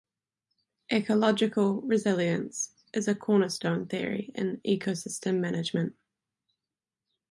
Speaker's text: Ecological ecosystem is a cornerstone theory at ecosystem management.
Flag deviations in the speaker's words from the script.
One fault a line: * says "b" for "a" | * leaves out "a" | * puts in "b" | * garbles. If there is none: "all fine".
* says "resilience" for "ecosystem"
* says "in" for "at"